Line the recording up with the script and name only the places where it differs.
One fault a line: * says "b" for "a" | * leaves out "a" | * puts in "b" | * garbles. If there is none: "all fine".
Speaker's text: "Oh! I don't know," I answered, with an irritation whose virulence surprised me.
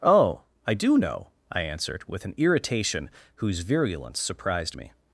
* says "do" for "don't"